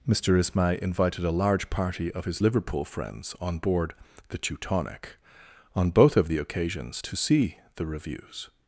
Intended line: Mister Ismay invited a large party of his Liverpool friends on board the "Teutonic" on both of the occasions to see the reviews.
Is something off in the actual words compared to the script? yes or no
no